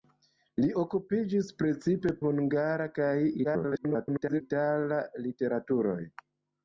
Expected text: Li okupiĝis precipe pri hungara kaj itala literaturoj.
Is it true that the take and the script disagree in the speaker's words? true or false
true